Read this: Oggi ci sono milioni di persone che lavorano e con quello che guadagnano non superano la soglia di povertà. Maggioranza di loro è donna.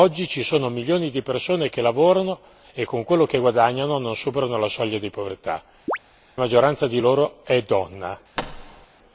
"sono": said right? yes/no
yes